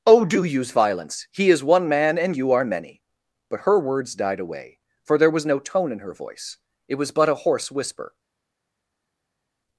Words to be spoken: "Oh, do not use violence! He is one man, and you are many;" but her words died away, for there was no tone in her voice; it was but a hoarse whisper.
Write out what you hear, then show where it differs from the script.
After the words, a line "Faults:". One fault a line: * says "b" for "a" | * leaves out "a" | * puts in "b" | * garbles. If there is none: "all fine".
"Oh, do use violence! He is one man, and you are many;" but her words died away, for there was no tone in her voice; it was but a hoarse whisper.
Faults:
* leaves out "not"